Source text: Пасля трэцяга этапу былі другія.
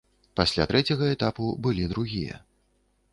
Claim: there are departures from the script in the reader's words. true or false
false